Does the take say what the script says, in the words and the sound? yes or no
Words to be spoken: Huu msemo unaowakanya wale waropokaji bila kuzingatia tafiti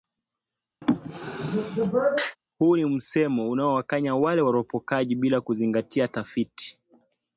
no